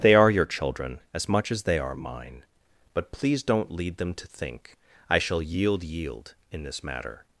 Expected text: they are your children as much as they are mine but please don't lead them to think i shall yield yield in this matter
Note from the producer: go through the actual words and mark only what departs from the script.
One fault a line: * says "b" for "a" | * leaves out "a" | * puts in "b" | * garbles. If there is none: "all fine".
all fine